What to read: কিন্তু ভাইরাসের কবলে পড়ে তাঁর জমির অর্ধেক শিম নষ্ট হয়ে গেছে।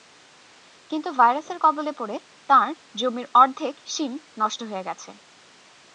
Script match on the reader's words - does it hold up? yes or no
yes